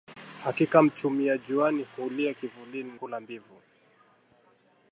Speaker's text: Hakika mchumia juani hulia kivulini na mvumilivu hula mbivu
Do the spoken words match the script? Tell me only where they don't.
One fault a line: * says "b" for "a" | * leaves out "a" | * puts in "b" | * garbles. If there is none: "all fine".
* leaves out "na mvumilivu"